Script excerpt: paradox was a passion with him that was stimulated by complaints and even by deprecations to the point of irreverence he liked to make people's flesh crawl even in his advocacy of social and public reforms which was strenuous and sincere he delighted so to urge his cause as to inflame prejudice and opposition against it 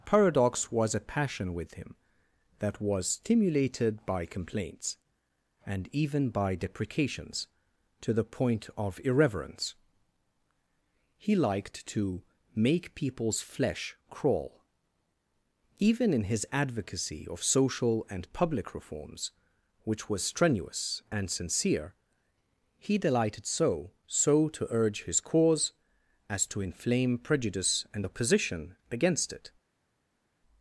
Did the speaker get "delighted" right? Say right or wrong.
right